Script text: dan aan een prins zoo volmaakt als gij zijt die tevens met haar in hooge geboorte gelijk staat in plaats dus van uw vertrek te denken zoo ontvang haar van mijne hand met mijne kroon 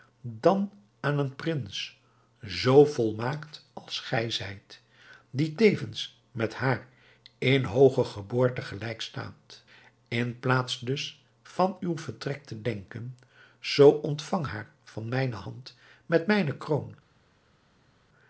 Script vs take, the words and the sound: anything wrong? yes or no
no